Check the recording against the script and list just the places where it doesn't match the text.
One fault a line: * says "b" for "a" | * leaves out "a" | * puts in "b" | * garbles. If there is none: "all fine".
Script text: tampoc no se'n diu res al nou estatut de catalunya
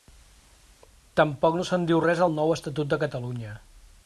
all fine